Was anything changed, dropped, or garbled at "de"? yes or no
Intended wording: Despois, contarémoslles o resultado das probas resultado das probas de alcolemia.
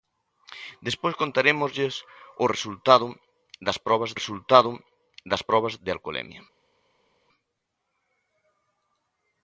no